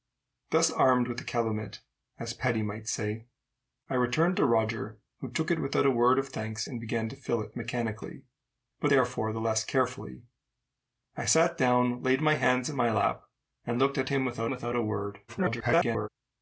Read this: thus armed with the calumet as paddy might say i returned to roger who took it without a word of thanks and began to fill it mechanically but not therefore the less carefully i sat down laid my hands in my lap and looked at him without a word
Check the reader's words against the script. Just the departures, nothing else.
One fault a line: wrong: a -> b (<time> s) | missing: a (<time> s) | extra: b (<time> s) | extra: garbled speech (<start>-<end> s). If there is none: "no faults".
missing: not (8.9 s)
extra: without (14.5 s)
extra: garbled speech (15.3-16.1 s)